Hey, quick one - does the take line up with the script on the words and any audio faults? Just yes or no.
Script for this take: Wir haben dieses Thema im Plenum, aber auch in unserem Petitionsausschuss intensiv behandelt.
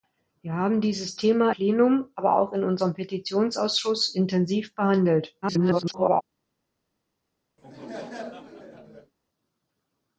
no